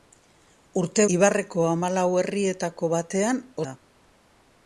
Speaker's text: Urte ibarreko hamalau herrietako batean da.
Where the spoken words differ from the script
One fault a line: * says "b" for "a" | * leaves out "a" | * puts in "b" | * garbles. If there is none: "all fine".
all fine